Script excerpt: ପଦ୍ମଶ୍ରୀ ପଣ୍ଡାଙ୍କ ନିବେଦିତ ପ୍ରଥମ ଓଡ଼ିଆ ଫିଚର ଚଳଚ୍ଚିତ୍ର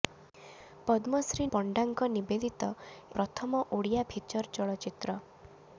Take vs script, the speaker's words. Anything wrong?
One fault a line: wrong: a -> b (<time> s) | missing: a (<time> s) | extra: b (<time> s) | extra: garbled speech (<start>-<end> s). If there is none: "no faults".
no faults